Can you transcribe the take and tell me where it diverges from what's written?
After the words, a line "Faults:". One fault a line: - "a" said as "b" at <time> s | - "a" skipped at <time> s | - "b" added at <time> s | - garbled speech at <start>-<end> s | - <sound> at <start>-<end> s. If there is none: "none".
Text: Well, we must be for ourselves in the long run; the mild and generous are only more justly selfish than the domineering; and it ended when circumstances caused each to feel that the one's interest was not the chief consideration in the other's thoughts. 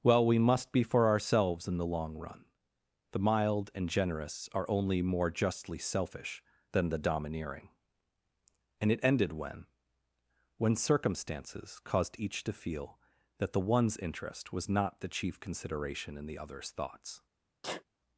Well, we must be for ourselves in the long run; the mild and generous are only more justly selfish than the domineering; and it ended when when circumstances caused each to feel that the one's interest was not the chief consideration in the other's thoughts.
Faults:
- "when" added at 10.6 s
- sneeze at 17.6-17.8 s